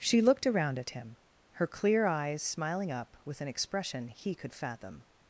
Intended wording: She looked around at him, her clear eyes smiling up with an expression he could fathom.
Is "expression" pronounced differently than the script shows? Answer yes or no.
no